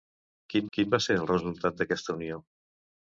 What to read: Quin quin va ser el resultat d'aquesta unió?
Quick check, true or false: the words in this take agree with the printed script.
true